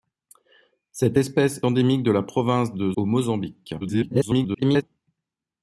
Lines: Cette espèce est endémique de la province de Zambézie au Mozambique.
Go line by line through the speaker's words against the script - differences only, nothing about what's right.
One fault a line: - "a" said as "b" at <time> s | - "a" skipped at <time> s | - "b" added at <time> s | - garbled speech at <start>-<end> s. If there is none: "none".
- "est" skipped at 1.6 s
- "Zambézie" skipped at 2.9 s
- garbled speech at 3.8-4.8 s